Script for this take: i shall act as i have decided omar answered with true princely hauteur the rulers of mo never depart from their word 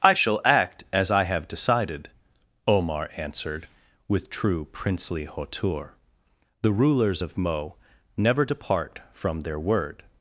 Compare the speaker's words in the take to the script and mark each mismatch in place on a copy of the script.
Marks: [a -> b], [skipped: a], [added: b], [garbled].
i shall act as i have decided omar answered with true princely hauteur the rulers of mo never depart from their word